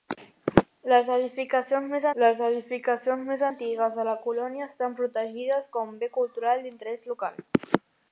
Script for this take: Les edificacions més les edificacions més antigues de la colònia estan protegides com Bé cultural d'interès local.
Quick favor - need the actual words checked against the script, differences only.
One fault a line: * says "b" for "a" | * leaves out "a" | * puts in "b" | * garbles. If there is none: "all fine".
all fine